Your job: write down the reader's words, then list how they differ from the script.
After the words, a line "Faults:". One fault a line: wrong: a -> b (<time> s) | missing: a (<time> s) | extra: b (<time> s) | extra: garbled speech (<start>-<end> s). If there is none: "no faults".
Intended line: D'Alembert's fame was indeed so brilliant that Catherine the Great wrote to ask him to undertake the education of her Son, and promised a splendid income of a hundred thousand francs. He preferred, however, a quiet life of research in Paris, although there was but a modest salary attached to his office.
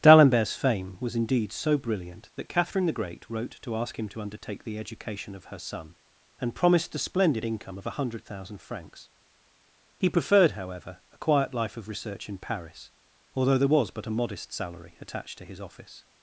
D'Alembert's fame was indeed so brilliant that Catherine the Great wrote to ask him to undertake the education of her Son, and promised a splendid income of a hundred thousand francs. He preferred, however, a quiet life of research in Paris, although there was but a modest salary attached to his office.
Faults:
no faults